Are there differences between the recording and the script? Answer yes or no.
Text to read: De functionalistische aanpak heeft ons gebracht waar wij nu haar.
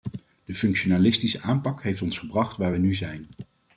yes